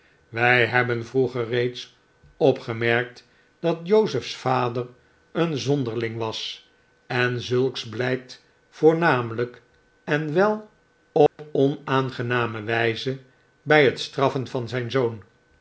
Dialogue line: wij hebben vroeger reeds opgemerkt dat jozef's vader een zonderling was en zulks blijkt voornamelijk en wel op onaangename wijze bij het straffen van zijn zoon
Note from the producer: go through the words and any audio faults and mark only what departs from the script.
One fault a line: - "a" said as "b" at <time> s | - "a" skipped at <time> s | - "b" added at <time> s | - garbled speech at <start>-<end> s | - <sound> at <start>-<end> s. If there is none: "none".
- dropout at 11.3-11.4 s